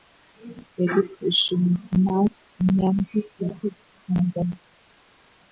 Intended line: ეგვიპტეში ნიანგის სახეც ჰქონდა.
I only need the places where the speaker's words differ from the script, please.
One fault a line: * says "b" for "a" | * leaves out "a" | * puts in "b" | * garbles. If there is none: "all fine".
* puts in "მას"